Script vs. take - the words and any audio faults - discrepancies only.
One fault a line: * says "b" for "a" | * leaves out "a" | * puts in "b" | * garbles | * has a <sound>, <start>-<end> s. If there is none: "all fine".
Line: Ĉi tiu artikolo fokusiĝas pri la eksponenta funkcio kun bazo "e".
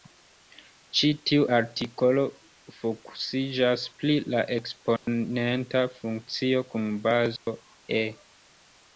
* has a dropout, 5.0-5.1 s
* has a dropout, 7.4-7.5 s